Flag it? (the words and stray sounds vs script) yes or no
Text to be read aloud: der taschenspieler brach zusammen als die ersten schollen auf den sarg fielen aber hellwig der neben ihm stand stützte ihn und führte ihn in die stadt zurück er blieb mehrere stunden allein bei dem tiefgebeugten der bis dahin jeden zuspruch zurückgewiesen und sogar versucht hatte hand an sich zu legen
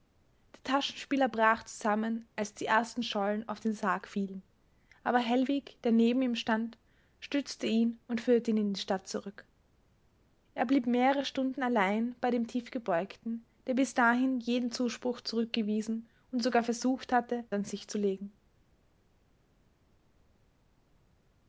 yes